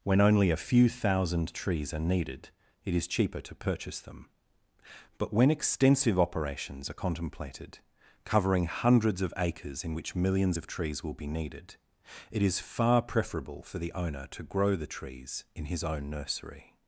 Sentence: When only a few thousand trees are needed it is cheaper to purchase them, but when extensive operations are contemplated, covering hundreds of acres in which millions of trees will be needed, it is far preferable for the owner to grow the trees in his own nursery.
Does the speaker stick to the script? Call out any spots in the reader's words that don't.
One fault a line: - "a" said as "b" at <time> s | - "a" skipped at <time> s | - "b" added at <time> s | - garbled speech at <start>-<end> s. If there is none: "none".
none